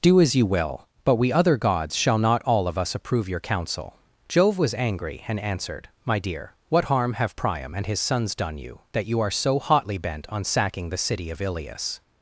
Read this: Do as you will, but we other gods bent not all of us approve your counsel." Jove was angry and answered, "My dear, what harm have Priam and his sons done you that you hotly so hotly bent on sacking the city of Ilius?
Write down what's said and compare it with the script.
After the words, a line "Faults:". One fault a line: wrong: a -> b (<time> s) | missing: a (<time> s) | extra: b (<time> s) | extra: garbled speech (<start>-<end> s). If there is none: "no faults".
Do as you will, but we other gods shall not all of us approve your counsel." Jove was angry and answered, "My dear, what harm have Priam and his sons done you that you are so hotly bent on sacking the city of Ilius?
Faults:
wrong: bent -> shall (1.9 s)
wrong: hotly -> are (9.2 s)